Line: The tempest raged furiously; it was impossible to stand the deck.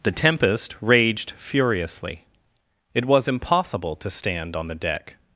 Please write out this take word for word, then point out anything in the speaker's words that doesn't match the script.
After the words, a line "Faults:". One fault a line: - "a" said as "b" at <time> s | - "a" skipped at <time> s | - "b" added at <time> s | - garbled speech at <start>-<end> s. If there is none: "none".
The tempest raged furiously; it was impossible to stand on the deck.
Faults:
- "on" added at 4.5 s